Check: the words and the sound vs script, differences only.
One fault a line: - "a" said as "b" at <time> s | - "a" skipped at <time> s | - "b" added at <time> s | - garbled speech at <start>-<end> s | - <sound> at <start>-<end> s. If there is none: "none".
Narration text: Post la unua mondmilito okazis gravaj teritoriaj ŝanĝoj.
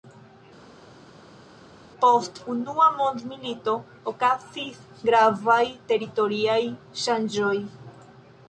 - "la" skipped at 2.4 s